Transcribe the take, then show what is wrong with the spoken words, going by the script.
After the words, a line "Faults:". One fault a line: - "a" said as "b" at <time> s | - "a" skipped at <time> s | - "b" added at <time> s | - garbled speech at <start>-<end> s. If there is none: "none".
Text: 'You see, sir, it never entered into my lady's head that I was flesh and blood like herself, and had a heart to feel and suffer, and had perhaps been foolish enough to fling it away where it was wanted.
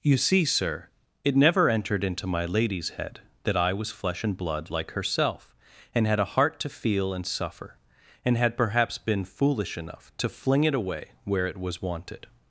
'You see, sir, it never entered into my lady's head that I was flesh and blood like herself, and had a heart to feel and suffer, and had perhaps been foolish enough to fling it away where it was wanted.
Faults:
none